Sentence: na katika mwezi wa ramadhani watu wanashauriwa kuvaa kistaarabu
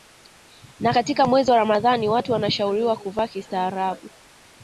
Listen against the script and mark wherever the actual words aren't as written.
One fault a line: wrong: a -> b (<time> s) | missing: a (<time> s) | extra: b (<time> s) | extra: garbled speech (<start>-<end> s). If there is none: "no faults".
no faults